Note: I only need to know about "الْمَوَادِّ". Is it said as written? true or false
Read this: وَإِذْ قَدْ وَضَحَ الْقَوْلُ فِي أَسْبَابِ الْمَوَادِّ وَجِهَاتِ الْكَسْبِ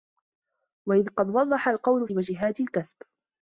false